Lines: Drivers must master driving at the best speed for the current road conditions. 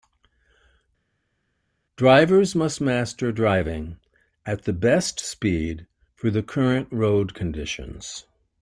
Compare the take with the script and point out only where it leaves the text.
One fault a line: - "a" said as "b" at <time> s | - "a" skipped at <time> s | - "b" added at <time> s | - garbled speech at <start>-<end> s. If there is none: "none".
none